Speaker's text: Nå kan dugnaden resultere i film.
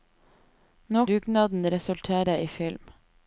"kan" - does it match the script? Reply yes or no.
no